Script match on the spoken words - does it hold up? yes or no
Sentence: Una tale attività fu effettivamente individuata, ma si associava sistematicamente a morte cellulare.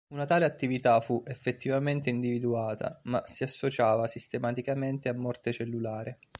yes